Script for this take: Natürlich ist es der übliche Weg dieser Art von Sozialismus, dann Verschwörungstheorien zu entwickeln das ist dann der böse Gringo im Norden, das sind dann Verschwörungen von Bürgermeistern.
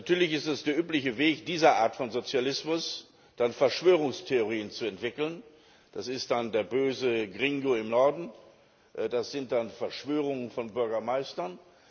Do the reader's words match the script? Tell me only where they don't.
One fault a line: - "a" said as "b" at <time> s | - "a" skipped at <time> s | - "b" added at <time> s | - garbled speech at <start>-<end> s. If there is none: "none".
none